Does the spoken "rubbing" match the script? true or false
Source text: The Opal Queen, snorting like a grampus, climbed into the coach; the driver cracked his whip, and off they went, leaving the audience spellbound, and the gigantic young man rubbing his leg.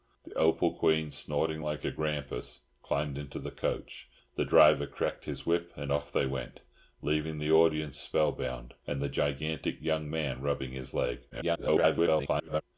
true